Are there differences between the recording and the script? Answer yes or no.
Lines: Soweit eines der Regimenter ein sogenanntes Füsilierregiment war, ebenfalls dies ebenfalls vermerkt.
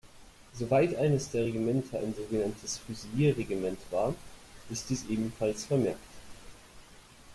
yes